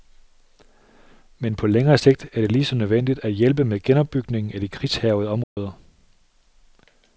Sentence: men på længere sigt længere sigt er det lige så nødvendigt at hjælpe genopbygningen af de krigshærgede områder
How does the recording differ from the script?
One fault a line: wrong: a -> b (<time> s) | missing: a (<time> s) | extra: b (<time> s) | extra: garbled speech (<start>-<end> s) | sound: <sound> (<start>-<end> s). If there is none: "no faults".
missing: længere sigt (2.3 s)
extra: med (3.6 s)
sound: dropout (5.4-5.6 s)